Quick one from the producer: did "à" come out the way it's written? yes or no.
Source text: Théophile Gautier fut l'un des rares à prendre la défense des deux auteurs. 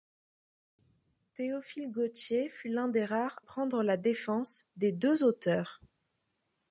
no